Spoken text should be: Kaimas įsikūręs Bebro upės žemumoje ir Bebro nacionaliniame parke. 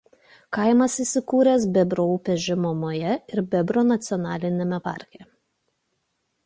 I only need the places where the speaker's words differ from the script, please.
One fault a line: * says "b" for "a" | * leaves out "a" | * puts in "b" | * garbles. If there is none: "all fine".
all fine